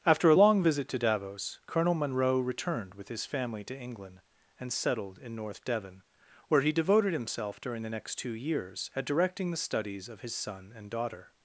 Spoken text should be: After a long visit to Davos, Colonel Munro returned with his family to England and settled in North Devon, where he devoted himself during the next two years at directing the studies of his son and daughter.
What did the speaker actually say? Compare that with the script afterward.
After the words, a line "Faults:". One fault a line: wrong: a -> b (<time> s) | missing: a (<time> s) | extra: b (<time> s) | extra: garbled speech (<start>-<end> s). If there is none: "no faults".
After a long visit to Davos, Colonel Munro returned with his family to England and settled in North Devon, where he devoted himself during the next two years at directing the studies of his son and daughter.
Faults:
no faults